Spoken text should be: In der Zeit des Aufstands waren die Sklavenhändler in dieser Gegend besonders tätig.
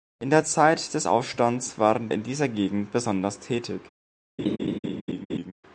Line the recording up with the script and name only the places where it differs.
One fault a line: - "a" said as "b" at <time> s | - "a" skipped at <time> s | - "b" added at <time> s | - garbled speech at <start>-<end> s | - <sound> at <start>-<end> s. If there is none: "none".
- "die Sklavenhändler" skipped at 2.1 s
- laugh at 4.4-5.5 s